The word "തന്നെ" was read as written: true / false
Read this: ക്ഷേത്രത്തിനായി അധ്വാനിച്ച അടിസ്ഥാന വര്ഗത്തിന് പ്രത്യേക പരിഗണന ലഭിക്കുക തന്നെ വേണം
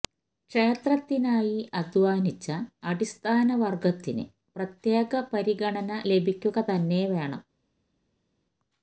true